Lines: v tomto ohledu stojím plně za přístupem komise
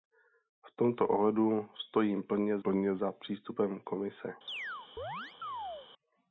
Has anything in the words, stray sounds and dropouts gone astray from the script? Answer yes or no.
yes